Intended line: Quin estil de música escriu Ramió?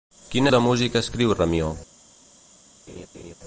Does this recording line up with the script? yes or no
no